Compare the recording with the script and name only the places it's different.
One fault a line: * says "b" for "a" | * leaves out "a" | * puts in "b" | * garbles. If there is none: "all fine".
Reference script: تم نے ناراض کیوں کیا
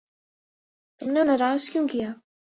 all fine